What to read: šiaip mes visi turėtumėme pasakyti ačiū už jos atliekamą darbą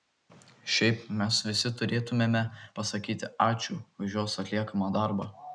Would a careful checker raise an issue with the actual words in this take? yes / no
no